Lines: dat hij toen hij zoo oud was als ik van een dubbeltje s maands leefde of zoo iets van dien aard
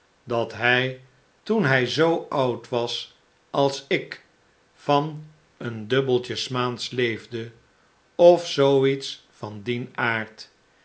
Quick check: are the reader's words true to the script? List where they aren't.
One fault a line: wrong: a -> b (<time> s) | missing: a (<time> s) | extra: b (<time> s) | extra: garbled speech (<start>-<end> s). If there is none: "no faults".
no faults